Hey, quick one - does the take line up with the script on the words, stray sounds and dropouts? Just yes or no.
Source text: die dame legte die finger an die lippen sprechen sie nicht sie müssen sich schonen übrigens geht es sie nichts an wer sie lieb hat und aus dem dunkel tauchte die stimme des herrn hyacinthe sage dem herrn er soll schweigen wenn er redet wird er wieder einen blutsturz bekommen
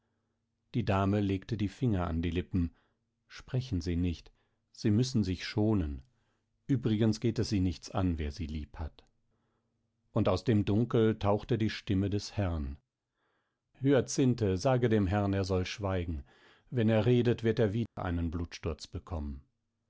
no